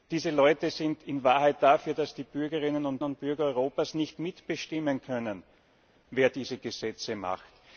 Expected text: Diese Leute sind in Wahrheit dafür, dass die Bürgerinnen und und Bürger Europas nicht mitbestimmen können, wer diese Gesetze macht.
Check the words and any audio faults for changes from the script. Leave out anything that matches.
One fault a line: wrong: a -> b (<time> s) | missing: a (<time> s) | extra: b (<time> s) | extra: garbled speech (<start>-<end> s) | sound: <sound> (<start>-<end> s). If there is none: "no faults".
no faults